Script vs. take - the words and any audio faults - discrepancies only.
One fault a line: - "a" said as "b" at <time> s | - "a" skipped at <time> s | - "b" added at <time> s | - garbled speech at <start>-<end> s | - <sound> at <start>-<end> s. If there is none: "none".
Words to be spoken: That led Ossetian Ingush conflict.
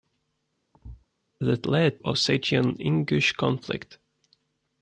- thud at 0.7-1.1 s